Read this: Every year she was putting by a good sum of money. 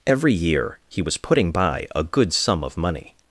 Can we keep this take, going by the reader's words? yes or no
no